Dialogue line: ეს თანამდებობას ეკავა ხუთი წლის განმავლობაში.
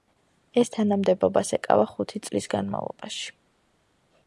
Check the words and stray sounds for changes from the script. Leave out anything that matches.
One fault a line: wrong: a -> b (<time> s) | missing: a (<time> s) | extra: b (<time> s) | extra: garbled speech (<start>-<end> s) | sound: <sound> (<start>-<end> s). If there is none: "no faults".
no faults